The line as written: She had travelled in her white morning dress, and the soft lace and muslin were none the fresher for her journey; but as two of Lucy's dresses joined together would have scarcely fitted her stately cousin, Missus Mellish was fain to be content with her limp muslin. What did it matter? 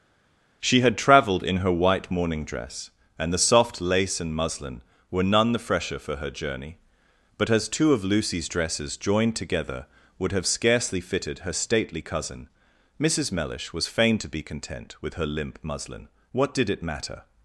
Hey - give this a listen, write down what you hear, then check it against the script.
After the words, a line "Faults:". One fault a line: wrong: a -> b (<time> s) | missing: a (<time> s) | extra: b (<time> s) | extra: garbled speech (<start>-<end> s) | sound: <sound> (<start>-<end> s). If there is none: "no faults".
She had travelled in her white morning dress, and the soft lace and muslin were none the fresher for her journey; but as two of Lucy's dresses joined together would have scarcely fitted her stately cousin, Missus Mellish was fain to be content with her limp muslin. What did it matter?
Faults:
no faults